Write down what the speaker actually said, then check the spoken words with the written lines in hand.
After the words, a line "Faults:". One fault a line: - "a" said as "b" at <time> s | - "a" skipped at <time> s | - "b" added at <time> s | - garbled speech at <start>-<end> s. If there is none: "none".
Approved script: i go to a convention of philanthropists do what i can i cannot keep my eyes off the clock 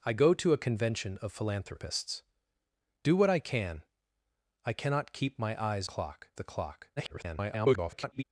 i go to a convention of philanthropists do what i can i cannot keep my eyes clock the clock [garbled]
Faults:
- "off" said as "clock" at 5.8 s
- garbled speech at 7.0-8.2 s